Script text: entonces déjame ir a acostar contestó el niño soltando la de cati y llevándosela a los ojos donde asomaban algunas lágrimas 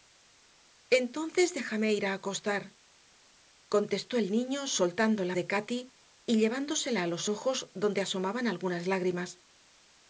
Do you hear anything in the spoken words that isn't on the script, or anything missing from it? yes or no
no